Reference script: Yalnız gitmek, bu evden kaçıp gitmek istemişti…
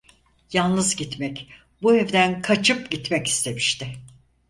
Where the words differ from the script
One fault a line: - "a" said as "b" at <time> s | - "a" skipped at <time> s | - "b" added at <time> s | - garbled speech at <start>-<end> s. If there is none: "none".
none